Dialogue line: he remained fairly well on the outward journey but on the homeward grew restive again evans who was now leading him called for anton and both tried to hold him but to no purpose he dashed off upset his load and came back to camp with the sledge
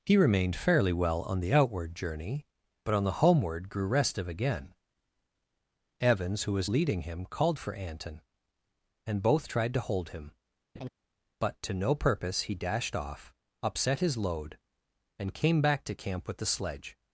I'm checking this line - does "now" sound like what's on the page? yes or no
no